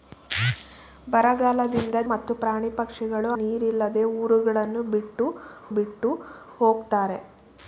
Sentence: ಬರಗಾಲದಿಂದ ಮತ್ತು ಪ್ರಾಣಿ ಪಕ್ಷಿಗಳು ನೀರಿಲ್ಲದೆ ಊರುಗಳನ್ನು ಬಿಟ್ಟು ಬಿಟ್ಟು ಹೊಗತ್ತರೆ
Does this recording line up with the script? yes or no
yes